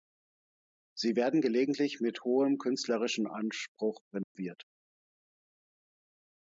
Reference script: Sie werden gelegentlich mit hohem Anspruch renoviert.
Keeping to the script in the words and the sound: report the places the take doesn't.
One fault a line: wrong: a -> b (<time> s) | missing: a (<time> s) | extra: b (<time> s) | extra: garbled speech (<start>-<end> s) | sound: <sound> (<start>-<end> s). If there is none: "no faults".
extra: künstlerischen (2.6 s)
sound: dropout (4.2-4.4 s)